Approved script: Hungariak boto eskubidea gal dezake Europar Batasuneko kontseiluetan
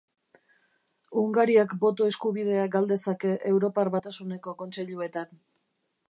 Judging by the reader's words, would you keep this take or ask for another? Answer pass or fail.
pass